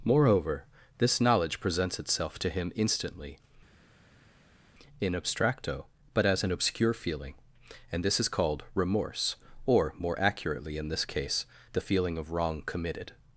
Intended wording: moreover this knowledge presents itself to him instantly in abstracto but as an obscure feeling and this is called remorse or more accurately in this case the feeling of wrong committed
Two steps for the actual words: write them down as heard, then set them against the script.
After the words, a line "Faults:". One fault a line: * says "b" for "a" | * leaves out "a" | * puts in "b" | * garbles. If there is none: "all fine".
moreover this knowledge presents itself to him instantly in abstracto but as an obscure feeling and this is called remorse or more accurately in this case the feeling of wrong committed
Faults:
all fine